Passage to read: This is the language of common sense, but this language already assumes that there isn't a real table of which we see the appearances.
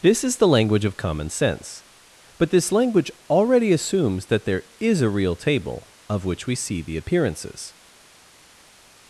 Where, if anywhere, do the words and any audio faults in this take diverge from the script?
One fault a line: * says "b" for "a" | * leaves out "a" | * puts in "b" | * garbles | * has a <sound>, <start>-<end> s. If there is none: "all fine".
* says "is" for "isn't"